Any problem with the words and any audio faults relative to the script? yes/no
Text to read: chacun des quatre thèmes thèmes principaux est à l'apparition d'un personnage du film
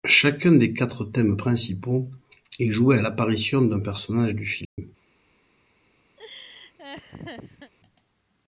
yes